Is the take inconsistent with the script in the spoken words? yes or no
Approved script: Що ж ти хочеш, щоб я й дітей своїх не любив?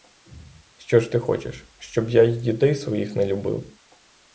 no